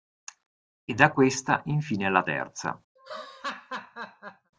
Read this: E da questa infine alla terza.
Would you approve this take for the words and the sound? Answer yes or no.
no